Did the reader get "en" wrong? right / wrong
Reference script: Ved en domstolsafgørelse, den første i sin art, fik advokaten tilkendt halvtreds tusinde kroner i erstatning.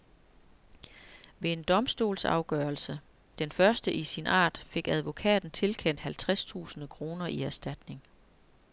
right